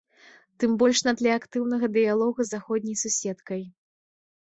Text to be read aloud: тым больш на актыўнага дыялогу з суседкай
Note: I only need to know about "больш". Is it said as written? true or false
true